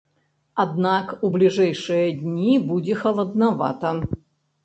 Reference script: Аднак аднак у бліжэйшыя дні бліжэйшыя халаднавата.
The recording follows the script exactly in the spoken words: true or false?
false